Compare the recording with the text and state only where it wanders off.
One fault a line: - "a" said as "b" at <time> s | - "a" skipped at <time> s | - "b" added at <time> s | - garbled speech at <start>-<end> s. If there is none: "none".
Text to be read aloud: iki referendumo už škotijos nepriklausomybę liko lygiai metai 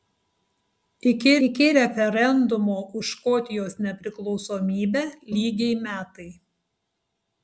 - "iki" added at 1.5 s
- "liko" skipped at 5.0 s